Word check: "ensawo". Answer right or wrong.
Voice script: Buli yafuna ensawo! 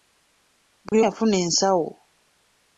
right